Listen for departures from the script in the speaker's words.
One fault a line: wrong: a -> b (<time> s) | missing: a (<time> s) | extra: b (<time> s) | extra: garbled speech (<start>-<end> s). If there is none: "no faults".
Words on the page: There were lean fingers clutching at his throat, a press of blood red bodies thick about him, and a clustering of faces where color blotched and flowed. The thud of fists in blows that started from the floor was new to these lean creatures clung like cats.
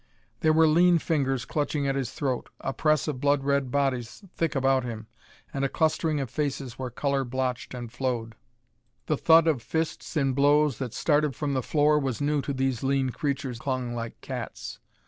no faults